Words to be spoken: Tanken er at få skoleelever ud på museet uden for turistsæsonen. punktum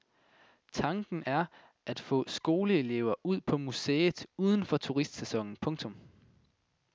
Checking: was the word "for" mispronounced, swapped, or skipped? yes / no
no